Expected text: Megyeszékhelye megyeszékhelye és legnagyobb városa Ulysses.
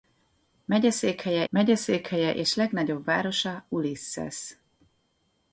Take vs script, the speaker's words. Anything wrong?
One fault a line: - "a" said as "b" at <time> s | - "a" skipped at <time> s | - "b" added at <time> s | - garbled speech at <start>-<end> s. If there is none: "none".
none